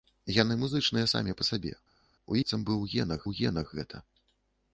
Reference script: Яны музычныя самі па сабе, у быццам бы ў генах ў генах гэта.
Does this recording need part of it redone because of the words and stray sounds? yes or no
no